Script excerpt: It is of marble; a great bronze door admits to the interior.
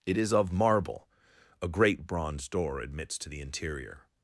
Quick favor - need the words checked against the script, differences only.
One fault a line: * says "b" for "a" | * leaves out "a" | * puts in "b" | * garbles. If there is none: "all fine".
all fine